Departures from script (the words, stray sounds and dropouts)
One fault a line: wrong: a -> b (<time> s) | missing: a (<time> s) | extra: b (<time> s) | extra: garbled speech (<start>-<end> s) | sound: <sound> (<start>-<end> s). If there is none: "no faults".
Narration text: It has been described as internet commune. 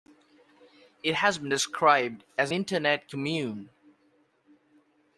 no faults